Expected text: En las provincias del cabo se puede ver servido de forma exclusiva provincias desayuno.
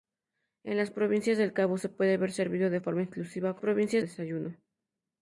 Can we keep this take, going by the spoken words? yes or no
yes